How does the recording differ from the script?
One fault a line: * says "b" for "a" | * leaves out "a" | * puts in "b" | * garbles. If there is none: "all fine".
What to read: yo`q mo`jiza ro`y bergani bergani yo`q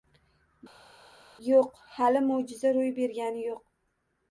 * puts in "hali"
* leaves out "bergani"